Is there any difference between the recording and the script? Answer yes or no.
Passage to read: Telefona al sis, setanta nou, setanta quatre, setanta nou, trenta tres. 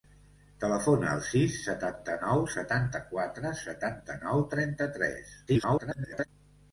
yes